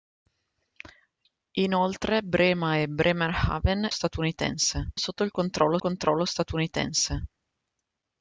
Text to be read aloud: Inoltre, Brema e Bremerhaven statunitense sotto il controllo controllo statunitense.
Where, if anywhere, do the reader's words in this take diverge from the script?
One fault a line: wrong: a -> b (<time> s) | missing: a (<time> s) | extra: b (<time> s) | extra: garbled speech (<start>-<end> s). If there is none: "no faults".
no faults